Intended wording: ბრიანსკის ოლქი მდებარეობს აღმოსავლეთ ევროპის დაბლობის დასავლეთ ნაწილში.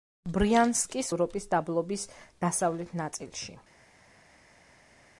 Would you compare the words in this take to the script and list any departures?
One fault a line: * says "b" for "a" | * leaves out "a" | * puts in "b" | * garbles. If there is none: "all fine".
* leaves out "ოლქი მდებარეობს აღმოსავლეთ"